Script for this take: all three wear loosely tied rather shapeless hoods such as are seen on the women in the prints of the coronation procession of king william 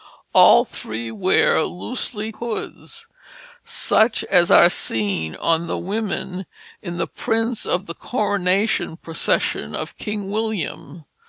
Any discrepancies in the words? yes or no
yes